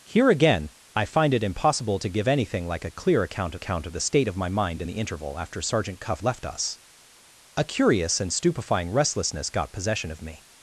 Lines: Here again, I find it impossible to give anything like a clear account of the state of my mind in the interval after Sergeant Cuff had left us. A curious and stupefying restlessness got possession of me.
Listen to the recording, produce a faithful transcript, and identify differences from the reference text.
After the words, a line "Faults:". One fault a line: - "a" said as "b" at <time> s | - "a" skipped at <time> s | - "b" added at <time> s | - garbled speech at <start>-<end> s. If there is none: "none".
Here again, I find it impossible to give anything like a clear account account of the state of my mind in the interval after Sergeant Cuff left us. A curious and stupefying restlessness got possession of me.
Faults:
- "account" added at 3.5 s
- "had" skipped at 6.2 s